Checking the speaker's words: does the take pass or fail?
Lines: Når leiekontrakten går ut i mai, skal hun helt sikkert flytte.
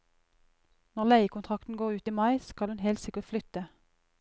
pass